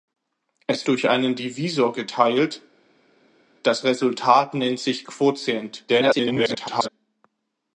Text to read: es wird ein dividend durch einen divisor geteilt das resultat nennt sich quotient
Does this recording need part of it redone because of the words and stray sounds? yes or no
yes